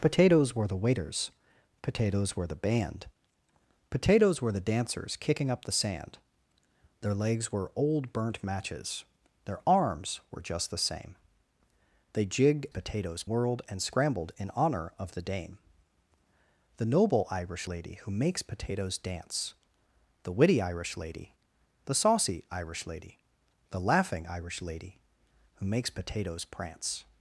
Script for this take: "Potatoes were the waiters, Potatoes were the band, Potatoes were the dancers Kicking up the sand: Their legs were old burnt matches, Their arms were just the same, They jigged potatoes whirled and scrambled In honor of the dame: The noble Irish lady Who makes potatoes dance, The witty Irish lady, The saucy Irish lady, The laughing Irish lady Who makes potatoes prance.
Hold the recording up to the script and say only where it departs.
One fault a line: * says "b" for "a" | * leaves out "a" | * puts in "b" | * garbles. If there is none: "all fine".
all fine